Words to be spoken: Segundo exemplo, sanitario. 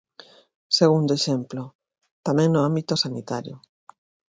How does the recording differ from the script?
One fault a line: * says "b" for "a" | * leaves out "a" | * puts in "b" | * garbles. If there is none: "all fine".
* puts in "tamén no ámbito"